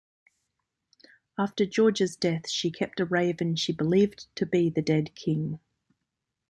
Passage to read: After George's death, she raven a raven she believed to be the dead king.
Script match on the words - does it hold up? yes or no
no